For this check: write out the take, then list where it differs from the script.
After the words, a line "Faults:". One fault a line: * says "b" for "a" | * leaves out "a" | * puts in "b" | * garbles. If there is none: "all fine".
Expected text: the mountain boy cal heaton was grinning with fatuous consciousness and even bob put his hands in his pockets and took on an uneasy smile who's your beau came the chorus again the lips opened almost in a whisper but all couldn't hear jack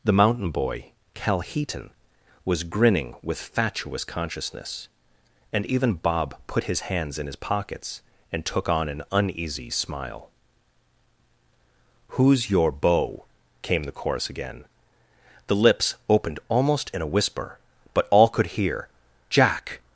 the mountain boy cal heaton was grinning with fatuous consciousness and even bob put his hands in his pockets and took on an uneasy smile who's your beau came the chorus again the lips opened almost in a whisper but all could hear jack
Faults:
* says "could" for "couldn't"